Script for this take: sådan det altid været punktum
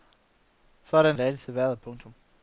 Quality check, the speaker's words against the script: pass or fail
pass